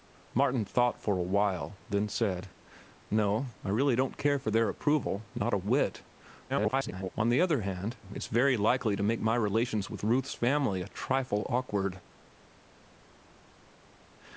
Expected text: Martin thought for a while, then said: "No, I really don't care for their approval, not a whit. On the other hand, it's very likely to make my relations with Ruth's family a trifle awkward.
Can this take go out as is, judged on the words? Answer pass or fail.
fail